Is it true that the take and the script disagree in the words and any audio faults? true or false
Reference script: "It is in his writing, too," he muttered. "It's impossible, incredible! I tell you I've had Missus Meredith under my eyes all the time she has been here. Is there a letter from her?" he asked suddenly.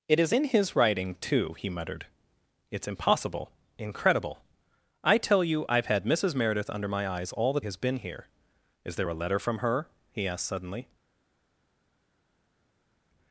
true